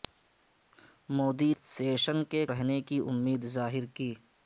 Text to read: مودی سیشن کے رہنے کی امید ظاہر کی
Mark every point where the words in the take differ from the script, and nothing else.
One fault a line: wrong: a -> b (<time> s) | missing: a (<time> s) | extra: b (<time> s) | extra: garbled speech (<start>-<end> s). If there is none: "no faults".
no faults